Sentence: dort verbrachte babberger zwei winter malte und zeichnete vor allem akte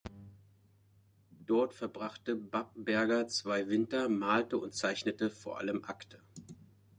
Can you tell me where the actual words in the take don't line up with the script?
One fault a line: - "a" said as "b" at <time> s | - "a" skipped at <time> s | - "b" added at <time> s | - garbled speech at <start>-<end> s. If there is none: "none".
none